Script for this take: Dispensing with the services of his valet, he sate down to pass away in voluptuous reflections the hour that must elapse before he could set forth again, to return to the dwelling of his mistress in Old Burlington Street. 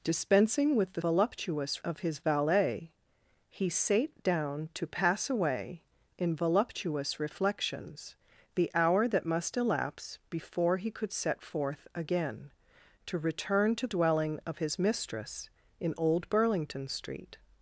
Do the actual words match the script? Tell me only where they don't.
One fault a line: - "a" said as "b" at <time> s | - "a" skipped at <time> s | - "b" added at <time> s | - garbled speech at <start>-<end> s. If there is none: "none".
- "services" said as "voluptuous" at 1.0 s
- "the" skipped at 13.9 s